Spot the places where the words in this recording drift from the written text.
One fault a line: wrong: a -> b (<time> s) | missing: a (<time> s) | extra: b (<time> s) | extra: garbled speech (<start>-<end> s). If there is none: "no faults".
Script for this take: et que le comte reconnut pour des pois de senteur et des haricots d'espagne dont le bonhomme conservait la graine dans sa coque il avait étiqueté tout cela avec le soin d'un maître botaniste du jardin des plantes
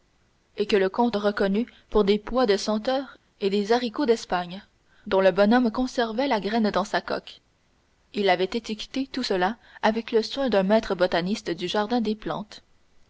no faults